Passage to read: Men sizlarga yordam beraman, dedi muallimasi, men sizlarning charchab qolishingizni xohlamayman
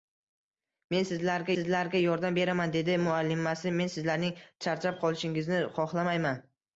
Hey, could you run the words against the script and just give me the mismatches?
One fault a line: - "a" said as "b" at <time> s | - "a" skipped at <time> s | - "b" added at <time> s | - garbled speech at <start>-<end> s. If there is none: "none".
- "sizlarga" added at 1.5 s